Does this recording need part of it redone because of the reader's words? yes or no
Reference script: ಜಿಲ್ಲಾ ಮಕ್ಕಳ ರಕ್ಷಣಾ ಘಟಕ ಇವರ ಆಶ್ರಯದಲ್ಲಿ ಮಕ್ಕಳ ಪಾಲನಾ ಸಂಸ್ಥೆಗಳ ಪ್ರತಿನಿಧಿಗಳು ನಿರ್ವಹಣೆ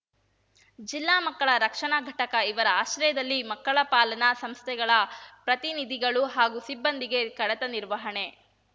yes